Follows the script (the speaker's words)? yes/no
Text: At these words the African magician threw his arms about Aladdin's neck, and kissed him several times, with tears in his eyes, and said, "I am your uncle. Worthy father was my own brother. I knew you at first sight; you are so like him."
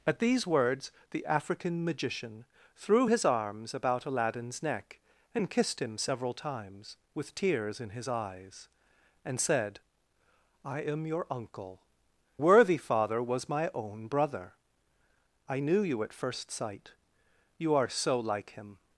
yes